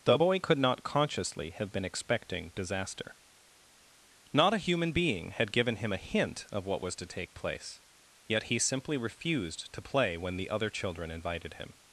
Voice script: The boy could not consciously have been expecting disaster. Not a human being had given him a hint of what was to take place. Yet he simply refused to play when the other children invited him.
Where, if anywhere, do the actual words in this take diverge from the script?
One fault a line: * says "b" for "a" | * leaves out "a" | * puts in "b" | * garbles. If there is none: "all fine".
all fine